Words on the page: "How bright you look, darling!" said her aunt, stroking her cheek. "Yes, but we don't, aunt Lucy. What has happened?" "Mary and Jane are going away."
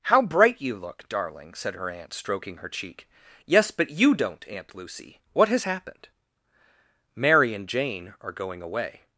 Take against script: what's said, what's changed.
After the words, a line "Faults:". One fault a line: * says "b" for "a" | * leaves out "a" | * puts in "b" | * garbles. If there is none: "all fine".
"How bright you look, darling!" said her aunt, stroking her cheek. "Yes, but you don't, aunt Lucy. What has happened?" "Mary and Jane are going away."
Faults:
* says "you" for "we"